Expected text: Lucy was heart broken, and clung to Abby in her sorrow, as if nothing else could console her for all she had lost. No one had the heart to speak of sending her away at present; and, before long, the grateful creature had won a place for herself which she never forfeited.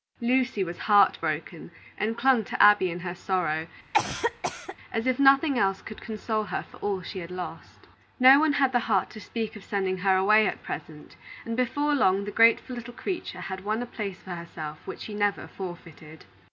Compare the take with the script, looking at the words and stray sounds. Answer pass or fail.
fail